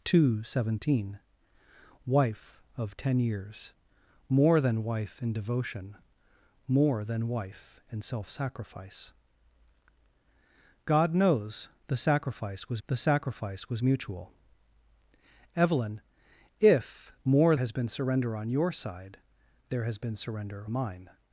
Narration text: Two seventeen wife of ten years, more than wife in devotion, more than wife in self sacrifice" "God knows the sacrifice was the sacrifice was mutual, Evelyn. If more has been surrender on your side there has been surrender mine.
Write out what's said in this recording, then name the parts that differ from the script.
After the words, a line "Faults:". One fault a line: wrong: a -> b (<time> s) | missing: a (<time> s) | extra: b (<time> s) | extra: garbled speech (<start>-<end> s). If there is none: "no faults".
Two seventeen wife of ten years, more than wife in devotion, more than wife in self sacrifice" "God knows the sacrifice was the sacrifice was mutual, Evelyn. If more has been surrender on your side there has been surrender mine.
Faults:
no faults